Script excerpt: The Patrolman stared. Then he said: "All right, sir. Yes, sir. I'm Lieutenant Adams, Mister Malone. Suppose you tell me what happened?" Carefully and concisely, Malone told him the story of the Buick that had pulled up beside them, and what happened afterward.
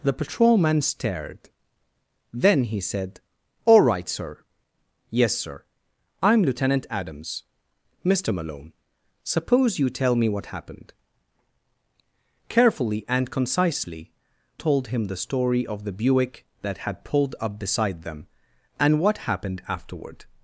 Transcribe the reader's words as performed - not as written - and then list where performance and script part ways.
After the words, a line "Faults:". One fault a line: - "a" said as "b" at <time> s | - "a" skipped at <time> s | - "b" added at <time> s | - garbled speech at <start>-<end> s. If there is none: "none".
The Patrolman stared. Then he said: "All right, sir. Yes, sir. I'm Lieutenant Adams, Mister Malone. Suppose you tell me what happened?" Carefully and concisely, Told him the story of the Buick that had pulled up beside them, and what happened afterward.
Faults:
- "Malone" skipped at 14.1 s